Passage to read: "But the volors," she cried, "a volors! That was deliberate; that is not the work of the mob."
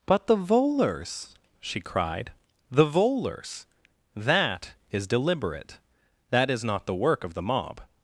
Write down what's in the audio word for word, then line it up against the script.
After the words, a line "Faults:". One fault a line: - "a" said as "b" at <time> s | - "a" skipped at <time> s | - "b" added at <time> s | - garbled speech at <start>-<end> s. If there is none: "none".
"But the volors," she cried, "the volors! That is deliberate; that is not the work of the mob."
Faults:
- "a" said as "the" at 2.7 s
- "was" said as "is" at 4.9 s